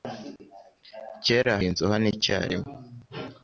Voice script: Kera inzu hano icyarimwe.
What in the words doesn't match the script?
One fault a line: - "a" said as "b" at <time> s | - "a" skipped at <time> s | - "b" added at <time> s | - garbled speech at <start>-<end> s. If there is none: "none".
none